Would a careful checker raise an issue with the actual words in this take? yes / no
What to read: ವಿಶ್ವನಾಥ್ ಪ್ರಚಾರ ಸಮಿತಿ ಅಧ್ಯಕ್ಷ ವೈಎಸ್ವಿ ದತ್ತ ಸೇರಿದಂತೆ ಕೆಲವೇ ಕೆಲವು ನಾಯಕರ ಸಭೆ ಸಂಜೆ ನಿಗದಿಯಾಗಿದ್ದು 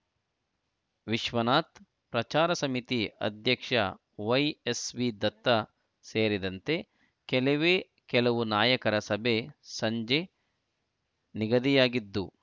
no